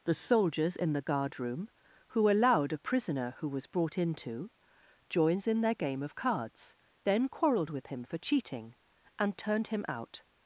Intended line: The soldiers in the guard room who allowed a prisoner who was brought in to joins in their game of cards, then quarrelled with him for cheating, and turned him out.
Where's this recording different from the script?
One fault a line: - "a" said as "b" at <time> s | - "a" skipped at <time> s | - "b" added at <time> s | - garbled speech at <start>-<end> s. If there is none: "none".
none